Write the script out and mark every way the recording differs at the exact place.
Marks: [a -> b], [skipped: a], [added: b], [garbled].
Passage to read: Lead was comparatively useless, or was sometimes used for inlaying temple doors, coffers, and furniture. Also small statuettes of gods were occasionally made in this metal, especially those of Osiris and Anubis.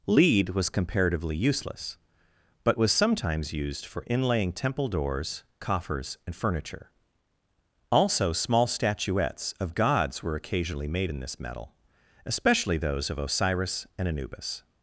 Lead was comparatively useless, [or -> but] was sometimes used for inlaying temple doors, coffers, and furniture. Also small statuettes of gods were occasionally made in this metal, especially those of Osiris and Anubis.